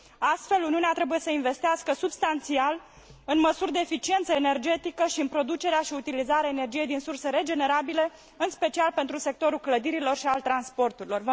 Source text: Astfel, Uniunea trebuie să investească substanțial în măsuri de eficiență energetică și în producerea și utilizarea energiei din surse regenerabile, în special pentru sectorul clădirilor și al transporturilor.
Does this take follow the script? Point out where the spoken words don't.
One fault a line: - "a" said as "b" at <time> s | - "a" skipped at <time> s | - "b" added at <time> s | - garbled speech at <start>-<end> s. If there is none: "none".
none